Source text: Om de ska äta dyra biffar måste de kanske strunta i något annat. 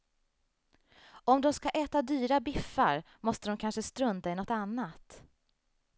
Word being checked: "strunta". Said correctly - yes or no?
yes